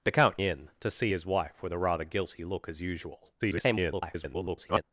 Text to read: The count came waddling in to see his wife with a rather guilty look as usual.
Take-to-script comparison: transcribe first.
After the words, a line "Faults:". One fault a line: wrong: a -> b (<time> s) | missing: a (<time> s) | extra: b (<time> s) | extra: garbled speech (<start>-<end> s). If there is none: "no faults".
The count in to see his wife with a rather guilty look as usual. [garbled]
Faults:
missing: came waddling (0.4 s)
extra: garbled speech (3.4-4.8 s)